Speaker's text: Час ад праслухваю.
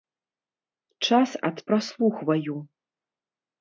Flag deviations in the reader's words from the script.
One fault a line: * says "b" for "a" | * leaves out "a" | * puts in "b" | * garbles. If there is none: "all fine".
all fine